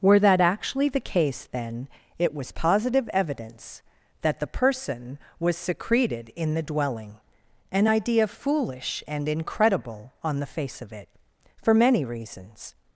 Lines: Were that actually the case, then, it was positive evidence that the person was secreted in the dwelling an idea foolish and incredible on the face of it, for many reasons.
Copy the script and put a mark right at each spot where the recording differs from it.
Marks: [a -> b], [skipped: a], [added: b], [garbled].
Were that actually the case, then, it was positive evidence that the person was secreted in the dwelling an idea foolish and incredible on the face of it, for many reasons.